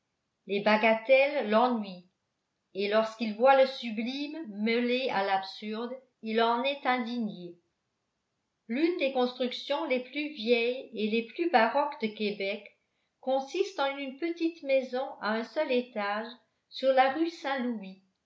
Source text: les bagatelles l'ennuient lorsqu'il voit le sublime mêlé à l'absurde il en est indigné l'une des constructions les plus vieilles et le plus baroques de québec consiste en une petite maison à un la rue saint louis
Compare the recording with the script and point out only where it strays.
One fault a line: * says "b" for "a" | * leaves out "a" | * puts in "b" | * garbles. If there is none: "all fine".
* puts in "et"
* says "les" for "le"
* puts in "seul étage sur"